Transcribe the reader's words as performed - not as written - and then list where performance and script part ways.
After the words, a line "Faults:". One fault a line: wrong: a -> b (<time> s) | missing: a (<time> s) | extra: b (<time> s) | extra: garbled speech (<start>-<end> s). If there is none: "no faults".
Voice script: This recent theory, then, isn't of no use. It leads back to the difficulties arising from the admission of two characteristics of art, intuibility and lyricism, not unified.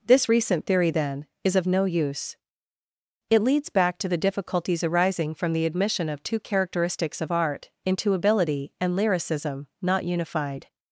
This recent theory, then, is of no use. It leads back to the difficulties arising from the admission of two characteristics of art, intuibility and lyricism, not unified.
Faults:
wrong: isn't -> is (1.4 s)